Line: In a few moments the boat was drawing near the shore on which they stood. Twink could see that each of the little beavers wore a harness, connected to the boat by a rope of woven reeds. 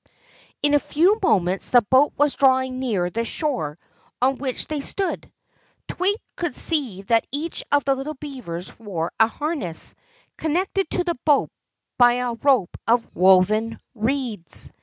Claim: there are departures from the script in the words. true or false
false